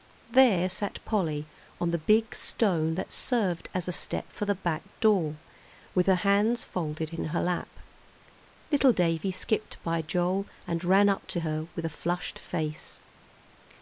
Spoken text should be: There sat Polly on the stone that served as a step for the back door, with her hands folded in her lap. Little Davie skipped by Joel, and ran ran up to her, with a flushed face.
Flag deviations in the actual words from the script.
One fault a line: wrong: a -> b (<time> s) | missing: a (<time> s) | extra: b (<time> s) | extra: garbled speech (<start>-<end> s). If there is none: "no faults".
extra: big (2.0 s)
missing: ran (11.1 s)